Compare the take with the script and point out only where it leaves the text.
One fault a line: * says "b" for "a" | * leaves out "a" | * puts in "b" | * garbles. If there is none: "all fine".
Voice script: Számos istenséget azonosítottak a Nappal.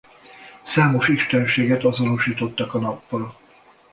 all fine